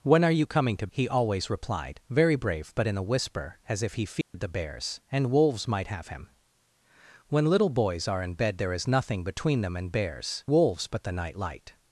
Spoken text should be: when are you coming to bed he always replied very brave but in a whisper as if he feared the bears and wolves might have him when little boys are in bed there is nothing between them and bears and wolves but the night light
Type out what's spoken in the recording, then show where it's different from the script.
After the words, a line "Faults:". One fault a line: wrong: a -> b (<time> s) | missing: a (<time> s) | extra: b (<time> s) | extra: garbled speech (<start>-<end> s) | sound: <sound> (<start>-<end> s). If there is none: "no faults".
when are you coming to he always replied very brave but in a whisper as if he feared the bears and wolves might have him when little boys are in bed there is nothing between them and bears wolves but the night light
Faults:
missing: bed (0.9 s)
sound: dropout (4.2-4.3 s)
missing: and (10.4 s)